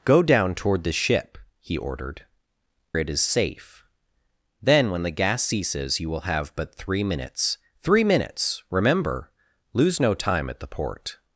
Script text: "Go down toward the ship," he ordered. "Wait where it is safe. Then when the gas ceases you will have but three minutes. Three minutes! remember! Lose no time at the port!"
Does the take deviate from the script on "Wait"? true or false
true